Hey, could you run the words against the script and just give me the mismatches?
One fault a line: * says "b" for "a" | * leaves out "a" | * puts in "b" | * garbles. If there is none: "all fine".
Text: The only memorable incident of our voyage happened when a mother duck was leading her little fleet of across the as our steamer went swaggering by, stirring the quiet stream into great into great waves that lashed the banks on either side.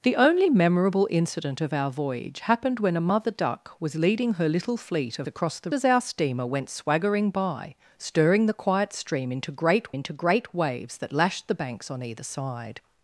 all fine